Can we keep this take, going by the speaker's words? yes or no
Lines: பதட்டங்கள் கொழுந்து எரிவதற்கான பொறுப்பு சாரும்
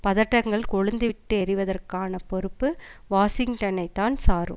no